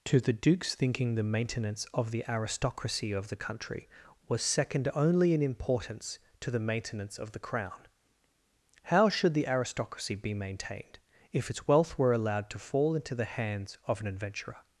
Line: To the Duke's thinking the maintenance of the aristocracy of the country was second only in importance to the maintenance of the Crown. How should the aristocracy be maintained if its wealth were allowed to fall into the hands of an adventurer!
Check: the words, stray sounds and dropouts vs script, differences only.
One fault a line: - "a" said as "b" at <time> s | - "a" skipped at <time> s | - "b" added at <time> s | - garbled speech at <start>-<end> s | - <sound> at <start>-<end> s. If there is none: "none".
none